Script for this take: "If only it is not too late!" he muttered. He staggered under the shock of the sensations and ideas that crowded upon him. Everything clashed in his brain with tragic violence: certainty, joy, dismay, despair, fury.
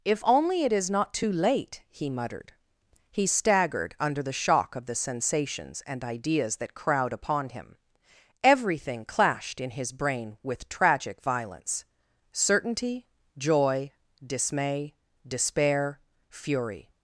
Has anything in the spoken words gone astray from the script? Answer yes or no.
yes